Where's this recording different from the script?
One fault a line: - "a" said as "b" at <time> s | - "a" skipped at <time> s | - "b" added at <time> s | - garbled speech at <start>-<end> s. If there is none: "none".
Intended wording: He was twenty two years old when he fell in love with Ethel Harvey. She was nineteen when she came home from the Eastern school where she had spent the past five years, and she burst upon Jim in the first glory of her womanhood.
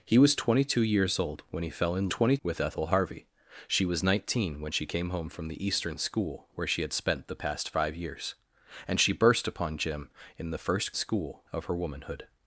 - "love" said as "twenty" at 2.1 s
- "glory" said as "school" at 10.9 s